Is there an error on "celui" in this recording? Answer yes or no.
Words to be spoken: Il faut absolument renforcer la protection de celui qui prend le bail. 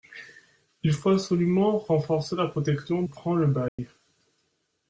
yes